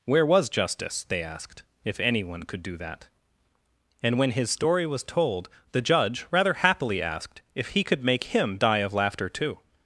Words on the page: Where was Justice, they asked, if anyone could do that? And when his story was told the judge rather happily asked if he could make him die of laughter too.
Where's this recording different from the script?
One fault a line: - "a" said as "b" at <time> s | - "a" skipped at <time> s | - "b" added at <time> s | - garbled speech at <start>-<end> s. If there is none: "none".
none